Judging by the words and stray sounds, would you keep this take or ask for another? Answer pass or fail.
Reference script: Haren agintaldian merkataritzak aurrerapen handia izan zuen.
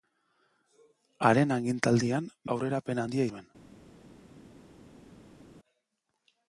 fail